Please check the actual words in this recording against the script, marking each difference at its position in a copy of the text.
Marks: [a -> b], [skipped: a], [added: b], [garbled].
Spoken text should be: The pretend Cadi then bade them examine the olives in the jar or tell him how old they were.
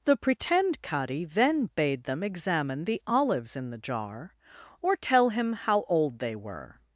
The pretend Cadi then bade them examine the olives in the jar or tell him how old they were.